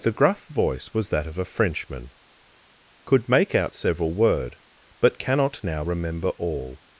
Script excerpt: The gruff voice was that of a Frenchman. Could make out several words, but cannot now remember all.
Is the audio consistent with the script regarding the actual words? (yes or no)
no